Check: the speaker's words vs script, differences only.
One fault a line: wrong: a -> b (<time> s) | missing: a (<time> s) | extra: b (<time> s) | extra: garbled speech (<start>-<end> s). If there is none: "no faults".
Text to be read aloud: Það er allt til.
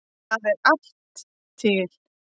no faults